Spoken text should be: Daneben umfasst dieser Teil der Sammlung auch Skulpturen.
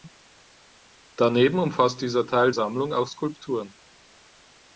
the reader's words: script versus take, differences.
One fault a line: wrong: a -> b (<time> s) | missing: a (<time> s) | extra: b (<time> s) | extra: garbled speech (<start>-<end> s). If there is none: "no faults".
missing: der (2.5 s)